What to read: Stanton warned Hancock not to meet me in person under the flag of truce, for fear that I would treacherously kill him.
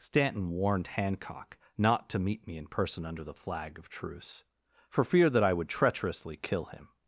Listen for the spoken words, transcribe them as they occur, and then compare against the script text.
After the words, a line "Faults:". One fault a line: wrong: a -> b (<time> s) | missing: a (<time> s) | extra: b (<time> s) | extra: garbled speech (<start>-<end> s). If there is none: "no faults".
Stanton warned Hancock not to meet me in person under the flag of truce, for fear that I would treacherously kill him.
Faults:
no faults